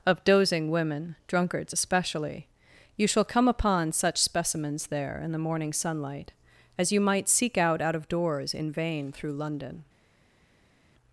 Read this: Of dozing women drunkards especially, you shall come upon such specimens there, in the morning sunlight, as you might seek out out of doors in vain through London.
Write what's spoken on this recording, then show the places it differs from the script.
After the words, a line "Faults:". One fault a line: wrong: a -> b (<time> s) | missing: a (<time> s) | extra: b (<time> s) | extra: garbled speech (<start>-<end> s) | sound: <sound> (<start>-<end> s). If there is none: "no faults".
Of dozing women drunkards especially, you shall come upon such specimens there, in the morning sunlight, as you might seek out out of doors in vain through London.
Faults:
no faults